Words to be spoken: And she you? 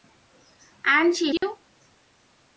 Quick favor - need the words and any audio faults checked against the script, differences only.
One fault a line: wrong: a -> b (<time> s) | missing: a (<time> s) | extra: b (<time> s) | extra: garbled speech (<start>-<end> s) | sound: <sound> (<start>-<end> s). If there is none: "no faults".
sound: dropout (1.4-1.4 s)